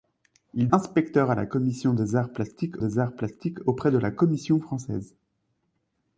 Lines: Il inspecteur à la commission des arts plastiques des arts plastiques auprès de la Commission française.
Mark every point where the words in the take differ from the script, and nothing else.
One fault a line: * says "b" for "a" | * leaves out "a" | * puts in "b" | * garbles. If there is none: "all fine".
all fine